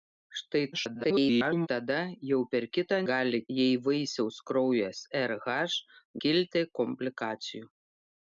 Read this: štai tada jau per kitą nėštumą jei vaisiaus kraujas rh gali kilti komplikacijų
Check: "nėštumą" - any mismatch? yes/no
yes